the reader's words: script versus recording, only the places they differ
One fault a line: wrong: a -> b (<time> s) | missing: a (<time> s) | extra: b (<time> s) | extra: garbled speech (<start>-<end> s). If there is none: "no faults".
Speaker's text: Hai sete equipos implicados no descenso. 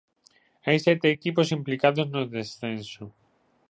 no faults